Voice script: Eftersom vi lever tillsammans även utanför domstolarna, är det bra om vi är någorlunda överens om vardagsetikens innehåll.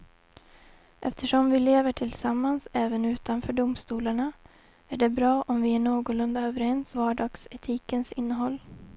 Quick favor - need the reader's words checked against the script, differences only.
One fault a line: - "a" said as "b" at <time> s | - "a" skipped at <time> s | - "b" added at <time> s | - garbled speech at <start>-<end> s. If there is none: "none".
- "om" skipped at 7.0 s